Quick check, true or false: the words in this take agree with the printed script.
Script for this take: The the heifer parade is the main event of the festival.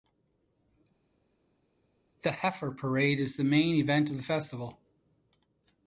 false